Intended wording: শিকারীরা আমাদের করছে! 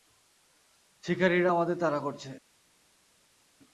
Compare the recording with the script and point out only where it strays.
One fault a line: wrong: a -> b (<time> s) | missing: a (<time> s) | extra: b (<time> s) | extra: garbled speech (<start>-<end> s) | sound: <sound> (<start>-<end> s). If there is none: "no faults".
extra: তাড়া (1.8 s)